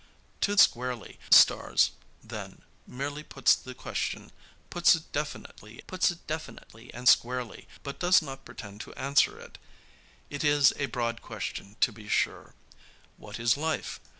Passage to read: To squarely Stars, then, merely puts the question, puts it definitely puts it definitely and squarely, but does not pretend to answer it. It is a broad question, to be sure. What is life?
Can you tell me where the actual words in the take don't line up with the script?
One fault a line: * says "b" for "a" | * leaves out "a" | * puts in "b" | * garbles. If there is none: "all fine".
all fine